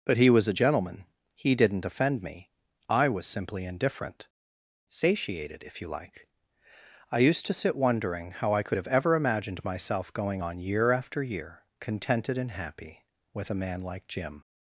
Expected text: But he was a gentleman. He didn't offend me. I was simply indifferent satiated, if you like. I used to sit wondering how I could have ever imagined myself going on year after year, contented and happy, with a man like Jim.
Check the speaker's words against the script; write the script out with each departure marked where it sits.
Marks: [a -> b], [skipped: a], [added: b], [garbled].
But he was a gentleman. He didn't offend me. I was simply indifferent satiated, if you like. I used to sit wondering how I could have ever imagined myself going on year after year, contented and happy, with a man like Jim.